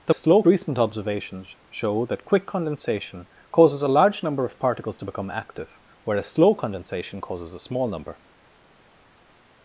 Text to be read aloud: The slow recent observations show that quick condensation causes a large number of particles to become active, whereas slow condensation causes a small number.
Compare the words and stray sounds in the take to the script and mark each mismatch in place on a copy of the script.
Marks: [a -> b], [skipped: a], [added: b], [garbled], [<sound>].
The slow recent observations show that quick condensation causes a large number of particles to become active, whereas slow condensation causes a small number.